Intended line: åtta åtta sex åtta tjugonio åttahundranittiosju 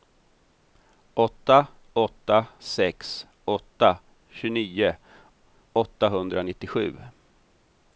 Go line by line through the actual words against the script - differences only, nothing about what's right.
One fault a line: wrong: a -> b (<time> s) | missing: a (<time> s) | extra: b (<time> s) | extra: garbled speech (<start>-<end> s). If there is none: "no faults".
no faults